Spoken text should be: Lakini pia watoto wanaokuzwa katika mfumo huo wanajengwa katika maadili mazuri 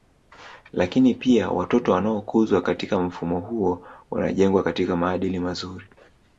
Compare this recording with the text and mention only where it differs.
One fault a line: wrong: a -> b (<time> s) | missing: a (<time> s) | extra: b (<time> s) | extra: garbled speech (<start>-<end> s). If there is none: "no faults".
no faults